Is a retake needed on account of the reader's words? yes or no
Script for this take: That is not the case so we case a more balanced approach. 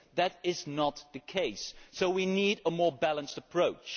yes